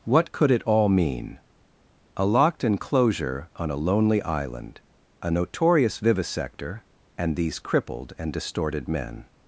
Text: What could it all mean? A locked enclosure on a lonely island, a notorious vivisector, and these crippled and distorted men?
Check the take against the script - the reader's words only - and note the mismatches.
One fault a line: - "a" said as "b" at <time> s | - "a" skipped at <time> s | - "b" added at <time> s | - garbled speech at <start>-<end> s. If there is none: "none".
none